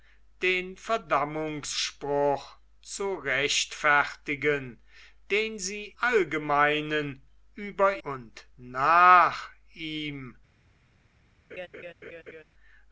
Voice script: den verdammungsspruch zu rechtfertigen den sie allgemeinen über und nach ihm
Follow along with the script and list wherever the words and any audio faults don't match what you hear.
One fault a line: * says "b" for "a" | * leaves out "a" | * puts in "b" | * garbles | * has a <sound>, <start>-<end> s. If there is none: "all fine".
* has a laugh, 11.5-12.4 s